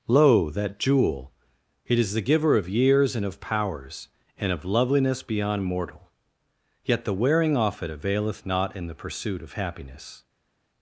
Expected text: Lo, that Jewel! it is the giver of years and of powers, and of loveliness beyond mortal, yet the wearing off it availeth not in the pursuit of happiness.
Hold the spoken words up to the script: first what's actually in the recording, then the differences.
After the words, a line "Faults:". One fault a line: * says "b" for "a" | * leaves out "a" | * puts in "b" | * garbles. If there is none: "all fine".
Lo, that Jewel! it is the giver of years and of powers, and of loveliness beyond mortal, yet the wearing off it availeth not in the pursuit of happiness.
Faults:
all fine